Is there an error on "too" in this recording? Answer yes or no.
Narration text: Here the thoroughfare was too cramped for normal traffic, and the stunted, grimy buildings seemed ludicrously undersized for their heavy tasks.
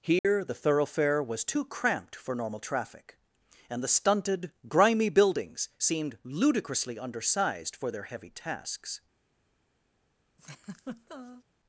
no